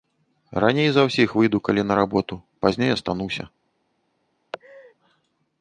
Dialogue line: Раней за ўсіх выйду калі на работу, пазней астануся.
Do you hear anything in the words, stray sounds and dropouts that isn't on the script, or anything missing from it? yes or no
yes